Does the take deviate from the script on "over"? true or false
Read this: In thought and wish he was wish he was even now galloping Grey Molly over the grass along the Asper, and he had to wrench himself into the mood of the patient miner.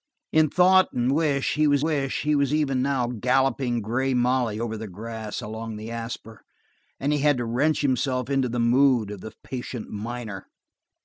false